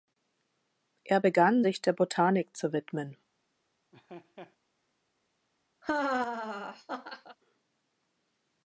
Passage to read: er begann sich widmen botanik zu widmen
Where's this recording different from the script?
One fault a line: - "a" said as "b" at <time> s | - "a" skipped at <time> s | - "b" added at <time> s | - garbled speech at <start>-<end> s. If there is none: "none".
- "widmen" said as "der" at 1.8 s